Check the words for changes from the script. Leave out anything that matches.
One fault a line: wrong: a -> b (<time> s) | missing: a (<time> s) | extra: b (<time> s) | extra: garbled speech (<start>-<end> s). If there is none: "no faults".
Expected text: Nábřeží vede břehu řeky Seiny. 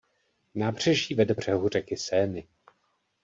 no faults